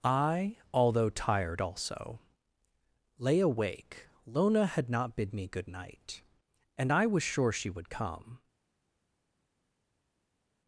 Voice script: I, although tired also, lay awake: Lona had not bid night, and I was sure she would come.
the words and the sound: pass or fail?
fail